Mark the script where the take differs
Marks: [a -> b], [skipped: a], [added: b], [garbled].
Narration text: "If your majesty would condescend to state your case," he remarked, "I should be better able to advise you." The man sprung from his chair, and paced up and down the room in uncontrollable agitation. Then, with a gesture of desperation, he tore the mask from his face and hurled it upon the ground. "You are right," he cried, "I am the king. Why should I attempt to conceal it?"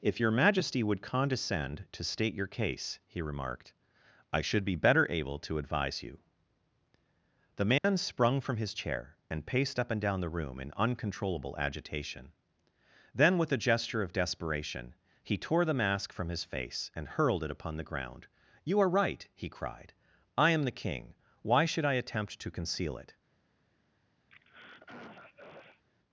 "If your majesty would condescend to state your case," he remarked, "I should be better able to advise you." The man sprung from his chair, and paced up and down the room in uncontrollable agitation. Then, with a gesture of desperation, he tore the mask from his face and hurled it upon the ground. "You are right," he cried, "I am the king. Why should I attempt to conceal it?"